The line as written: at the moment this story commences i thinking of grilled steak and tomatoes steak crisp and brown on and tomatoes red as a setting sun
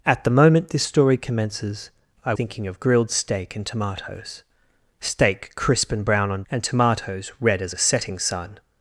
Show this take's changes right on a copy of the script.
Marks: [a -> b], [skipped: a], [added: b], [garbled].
at the moment this story commences i thinking of grilled steak and tomatoes steak crisp and brown on and tomatoes red as a setting sun